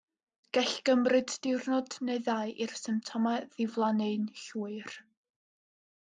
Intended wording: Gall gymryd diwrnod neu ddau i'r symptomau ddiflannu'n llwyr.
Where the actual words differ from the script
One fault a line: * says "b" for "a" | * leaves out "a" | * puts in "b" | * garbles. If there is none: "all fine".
all fine